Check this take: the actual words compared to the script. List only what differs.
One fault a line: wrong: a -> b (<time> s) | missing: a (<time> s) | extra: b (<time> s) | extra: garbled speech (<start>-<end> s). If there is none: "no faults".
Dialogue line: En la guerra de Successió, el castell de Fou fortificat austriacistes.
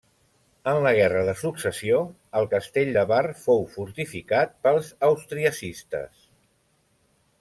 extra: Bar (3.1 s)
extra: pels (4.7 s)